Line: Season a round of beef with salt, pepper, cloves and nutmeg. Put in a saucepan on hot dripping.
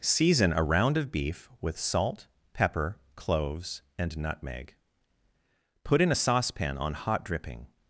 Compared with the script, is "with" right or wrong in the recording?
right